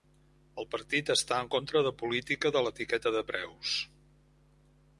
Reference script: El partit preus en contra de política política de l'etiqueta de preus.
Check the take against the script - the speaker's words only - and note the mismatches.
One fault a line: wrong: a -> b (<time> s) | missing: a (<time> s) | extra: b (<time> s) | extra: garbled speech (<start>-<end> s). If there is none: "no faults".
wrong: preus -> està (1.1 s)
missing: política (2.5 s)